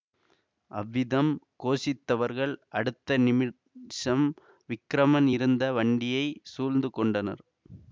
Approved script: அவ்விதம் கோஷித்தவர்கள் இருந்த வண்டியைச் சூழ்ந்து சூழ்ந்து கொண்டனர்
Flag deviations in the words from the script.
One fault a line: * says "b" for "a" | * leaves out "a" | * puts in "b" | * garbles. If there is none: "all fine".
* puts in "அடுத்த நிமிஷம் விக்கிரமன்"
* leaves out "சூழ்ந்து"